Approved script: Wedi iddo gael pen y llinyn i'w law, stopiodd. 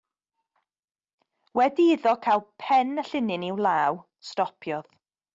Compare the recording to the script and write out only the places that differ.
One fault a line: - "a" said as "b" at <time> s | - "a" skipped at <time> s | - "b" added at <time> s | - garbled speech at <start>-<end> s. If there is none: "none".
none